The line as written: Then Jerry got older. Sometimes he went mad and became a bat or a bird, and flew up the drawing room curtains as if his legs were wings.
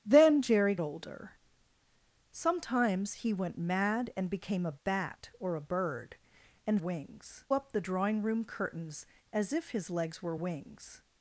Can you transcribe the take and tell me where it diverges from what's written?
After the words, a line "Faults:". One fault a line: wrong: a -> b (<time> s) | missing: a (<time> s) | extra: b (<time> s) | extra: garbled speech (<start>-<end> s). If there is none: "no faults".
Then Jerry older. Sometimes he went mad and became a bat or a bird, and wings up the drawing room curtains as if his legs were wings.
Faults:
missing: got (0.8 s)
wrong: flew -> wings (6.8 s)